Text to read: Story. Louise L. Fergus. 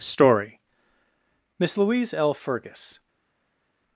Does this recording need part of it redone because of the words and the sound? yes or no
yes